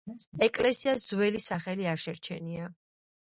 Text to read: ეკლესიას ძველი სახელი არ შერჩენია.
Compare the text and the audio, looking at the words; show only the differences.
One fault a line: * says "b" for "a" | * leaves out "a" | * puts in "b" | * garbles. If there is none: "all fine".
all fine